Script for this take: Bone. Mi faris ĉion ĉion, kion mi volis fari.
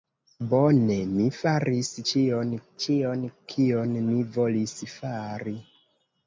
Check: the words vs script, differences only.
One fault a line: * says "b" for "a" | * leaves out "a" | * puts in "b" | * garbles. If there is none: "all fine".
all fine